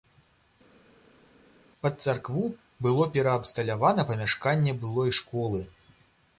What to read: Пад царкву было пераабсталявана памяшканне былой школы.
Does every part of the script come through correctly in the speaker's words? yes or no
yes